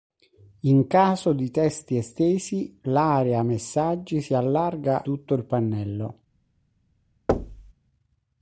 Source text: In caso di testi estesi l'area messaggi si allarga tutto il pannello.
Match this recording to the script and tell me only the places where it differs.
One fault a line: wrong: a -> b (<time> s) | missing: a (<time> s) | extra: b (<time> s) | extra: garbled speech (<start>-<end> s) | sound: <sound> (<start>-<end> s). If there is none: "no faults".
sound: thud (7.3-7.7 s)